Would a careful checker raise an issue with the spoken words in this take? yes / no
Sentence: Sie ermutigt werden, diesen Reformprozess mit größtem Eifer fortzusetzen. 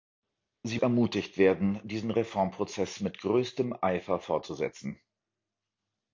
no